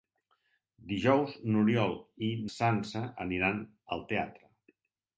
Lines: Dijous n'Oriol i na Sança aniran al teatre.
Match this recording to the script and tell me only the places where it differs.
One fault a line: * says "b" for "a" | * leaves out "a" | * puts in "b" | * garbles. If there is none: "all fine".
* leaves out "na"